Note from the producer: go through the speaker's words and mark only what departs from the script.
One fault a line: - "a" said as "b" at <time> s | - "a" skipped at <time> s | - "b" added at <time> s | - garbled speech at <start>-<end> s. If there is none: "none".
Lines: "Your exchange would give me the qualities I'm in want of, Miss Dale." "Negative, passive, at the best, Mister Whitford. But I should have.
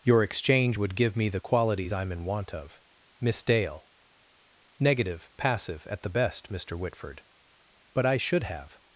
none